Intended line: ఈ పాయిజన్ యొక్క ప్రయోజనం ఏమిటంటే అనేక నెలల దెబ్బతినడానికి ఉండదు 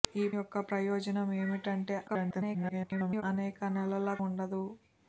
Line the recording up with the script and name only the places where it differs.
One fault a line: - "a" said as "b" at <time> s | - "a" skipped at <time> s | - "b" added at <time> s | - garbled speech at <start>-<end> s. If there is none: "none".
- "పాయిజన్" skipped at 0.3 s
- garbled speech at 2.1-3.2 s
- "దెబ్బతినడానికి" skipped at 4.2 s